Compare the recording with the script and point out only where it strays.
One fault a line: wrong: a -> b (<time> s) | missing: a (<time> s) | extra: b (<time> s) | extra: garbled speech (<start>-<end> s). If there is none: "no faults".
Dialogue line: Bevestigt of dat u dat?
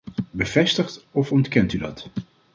wrong: dat -> ontkent (1.3 s)